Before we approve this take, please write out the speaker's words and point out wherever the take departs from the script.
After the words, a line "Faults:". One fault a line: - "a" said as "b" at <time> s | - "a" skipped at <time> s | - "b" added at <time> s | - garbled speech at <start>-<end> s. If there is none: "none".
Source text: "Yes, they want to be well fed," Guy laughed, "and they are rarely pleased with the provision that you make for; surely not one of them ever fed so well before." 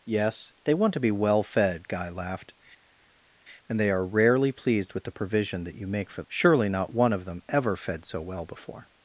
"Yes, they want to be well fed," Guy laughed, "and they are rarely pleased with the provision that you make for; surely not one of them ever fed so well before."
Faults:
none